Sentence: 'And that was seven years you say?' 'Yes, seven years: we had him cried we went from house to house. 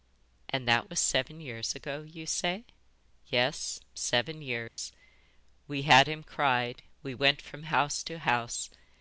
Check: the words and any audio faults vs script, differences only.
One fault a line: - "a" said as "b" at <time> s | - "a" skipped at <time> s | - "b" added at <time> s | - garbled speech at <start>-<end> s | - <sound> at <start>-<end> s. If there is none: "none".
- "ago" added at 1.8 s
- dropout at 4.7-4.8 s